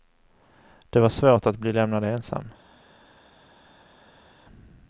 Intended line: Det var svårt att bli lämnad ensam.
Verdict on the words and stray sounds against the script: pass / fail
pass